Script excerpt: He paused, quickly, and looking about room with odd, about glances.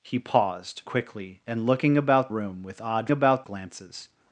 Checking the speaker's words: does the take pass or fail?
pass